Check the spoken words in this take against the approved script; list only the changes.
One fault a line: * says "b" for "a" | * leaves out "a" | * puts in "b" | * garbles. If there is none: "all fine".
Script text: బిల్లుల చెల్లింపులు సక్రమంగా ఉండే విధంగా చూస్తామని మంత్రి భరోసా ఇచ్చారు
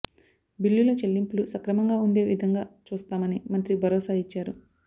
all fine